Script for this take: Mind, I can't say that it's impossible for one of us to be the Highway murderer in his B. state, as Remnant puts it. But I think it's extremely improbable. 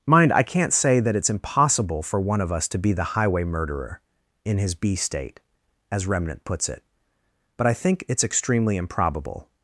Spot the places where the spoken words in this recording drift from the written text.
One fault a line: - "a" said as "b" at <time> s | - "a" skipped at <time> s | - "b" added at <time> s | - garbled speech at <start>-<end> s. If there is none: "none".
none